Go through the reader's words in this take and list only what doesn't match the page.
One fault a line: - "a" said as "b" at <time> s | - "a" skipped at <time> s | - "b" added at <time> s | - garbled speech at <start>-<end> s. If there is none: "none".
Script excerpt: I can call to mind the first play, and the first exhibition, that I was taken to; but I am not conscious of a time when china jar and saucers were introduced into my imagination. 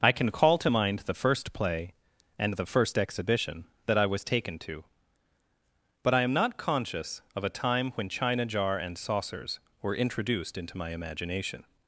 none